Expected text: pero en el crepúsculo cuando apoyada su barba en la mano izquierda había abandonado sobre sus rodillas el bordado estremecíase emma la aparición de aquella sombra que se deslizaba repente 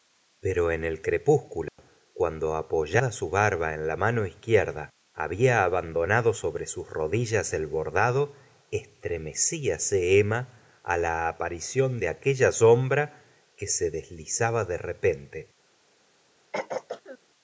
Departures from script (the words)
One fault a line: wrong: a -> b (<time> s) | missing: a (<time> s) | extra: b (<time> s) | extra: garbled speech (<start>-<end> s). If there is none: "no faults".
extra: de (14.6 s)